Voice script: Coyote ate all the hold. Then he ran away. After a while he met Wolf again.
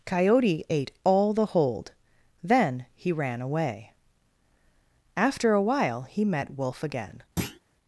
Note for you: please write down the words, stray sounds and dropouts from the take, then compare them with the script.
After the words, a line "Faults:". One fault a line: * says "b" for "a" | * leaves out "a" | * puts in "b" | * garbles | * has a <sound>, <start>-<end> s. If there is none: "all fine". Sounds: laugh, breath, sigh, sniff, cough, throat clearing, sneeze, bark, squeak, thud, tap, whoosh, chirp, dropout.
Coyote ate all the hold. Then he ran away. After a while he met Wolf again.
Faults:
* has a thud, 7.4-7.6 s